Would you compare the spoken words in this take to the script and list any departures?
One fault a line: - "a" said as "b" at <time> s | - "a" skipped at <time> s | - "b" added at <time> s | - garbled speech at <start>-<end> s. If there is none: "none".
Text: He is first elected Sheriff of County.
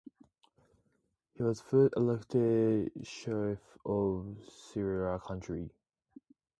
- "is" said as "was" at 1.4 s
- "Sierra" added at 4.4 s